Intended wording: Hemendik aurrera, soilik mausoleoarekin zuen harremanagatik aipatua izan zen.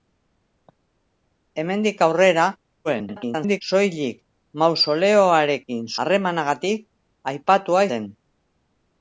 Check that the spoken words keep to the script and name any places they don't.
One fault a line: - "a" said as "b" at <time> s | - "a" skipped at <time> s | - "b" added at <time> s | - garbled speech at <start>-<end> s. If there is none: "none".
- garbled speech at 2.8-3.6 s
- "zuen" skipped at 5.9 s
- "izan" skipped at 7.9 s